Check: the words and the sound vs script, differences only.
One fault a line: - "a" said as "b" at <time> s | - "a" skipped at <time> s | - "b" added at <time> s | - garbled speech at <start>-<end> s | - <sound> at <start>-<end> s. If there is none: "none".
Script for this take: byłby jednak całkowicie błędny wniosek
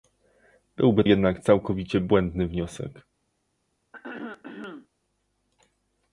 - throat clearing at 3.9-4.9 s